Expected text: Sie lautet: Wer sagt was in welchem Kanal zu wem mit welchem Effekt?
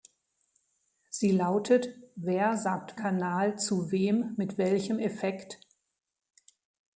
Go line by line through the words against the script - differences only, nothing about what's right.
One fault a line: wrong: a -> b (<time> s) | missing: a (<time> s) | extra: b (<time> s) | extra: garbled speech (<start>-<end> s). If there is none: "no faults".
missing: was in welchem (3.0 s)